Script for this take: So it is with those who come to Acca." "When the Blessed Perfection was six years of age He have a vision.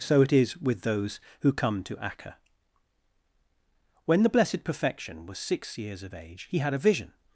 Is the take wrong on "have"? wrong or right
wrong